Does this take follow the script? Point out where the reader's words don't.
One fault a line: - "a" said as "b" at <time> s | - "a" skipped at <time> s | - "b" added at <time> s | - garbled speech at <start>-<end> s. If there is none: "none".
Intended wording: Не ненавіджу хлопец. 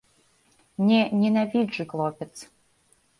none